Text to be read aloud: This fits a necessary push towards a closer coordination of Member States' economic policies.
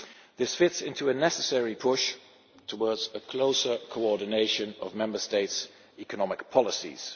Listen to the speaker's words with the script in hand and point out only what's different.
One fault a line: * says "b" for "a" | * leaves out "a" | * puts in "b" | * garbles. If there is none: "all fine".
* puts in "into"